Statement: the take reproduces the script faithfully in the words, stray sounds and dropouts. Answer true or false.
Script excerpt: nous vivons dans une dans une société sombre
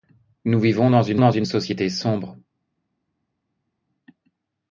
true